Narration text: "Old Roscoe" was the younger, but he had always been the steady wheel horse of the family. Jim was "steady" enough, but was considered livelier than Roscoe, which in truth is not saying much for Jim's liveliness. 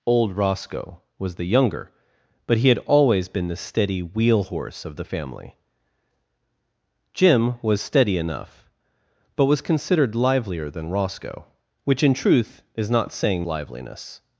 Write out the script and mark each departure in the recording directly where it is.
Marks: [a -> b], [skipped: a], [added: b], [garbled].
"Old Roscoe" was the younger, but he had always been the steady wheel horse of the family. Jim was "steady" enough, but was considered livelier than Roscoe, which in truth is not saying [skipped: much for Jim's] liveliness.